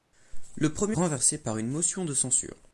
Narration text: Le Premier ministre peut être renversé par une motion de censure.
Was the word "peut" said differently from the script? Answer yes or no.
yes